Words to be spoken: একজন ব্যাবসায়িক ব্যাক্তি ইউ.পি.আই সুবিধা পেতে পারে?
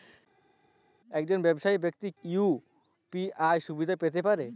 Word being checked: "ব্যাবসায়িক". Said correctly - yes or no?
yes